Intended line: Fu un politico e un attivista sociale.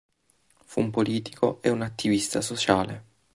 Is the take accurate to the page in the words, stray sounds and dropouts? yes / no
yes